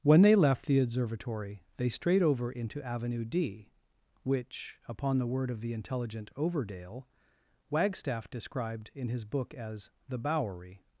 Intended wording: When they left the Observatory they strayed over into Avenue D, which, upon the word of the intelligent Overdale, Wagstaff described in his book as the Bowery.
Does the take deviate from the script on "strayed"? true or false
false